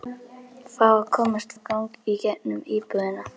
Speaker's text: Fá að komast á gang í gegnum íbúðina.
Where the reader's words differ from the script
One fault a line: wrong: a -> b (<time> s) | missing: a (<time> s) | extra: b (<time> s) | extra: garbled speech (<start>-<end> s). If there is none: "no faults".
no faults